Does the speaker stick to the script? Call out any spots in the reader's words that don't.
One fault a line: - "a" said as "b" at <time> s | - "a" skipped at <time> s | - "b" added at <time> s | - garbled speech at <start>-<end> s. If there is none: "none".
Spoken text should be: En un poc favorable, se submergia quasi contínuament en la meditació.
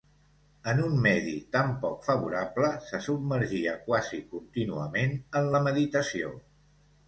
- "medi tan" added at 1.0 s